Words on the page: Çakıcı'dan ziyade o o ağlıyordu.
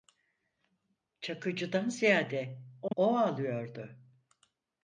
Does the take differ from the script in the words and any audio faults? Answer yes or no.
yes